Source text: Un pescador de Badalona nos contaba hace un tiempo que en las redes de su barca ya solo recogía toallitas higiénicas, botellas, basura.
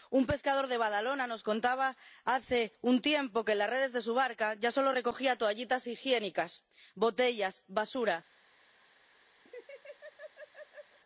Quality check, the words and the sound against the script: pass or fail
fail